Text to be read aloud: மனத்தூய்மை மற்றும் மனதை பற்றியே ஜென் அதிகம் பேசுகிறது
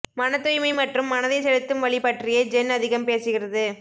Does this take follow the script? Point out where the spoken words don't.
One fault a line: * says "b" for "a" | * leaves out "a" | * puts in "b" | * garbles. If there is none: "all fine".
* puts in "செலுத்தும் வழி"